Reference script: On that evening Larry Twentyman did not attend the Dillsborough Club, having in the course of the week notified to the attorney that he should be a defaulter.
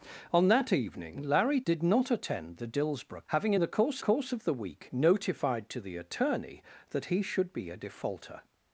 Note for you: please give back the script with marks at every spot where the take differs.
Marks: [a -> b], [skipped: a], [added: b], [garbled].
On that evening Larry [skipped: Twentyman] did not attend the Dillsborough [skipped: Club,] having in the course [added: course] of the week notified to the attorney that he should be a defaulter.